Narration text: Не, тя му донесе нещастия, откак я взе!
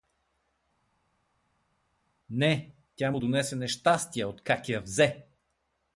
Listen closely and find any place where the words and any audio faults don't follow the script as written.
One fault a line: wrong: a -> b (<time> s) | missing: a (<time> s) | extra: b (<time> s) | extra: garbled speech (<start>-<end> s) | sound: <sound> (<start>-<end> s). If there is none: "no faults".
no faults